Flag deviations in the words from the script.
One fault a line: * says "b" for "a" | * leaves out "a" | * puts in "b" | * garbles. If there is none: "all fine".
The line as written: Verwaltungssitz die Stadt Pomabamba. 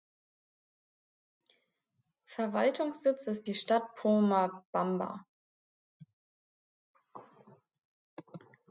* puts in "ist"